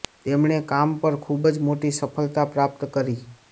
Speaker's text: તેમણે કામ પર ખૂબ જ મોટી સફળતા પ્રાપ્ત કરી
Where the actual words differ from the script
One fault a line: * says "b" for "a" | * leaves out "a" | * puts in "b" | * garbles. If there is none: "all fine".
all fine